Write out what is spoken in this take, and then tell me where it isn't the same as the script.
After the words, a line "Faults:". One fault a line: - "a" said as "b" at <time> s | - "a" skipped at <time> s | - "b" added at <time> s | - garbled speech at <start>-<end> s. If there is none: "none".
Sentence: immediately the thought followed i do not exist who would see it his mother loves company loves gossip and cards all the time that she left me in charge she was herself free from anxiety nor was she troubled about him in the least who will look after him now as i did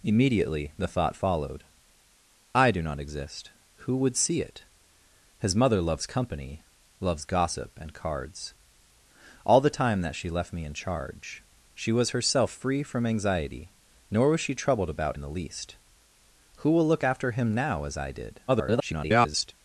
immediately the thought followed i do not exist who would see it his mother loves company loves gossip and cards all the time that she left me in charge she was herself free from anxiety nor was she troubled about in the least who will look after him now as i did [garbled]
Faults:
- "him" skipped at 15.2 s
- garbled speech at 18.5-19.5 s